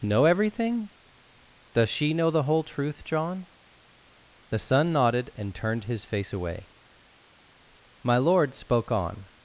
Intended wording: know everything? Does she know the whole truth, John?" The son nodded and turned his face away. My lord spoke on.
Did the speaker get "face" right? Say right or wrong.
right